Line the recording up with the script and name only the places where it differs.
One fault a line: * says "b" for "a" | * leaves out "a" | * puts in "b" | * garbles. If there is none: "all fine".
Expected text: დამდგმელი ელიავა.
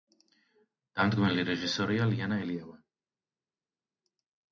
* puts in "რეჟისორია ლიანა"